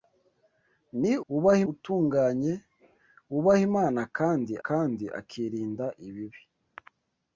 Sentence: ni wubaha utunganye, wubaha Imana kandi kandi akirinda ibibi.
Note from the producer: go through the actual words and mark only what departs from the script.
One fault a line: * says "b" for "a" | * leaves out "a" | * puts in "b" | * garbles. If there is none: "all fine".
all fine